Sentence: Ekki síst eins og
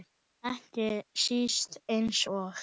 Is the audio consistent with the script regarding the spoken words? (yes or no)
yes